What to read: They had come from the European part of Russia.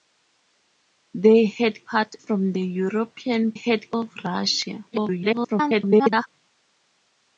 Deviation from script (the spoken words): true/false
true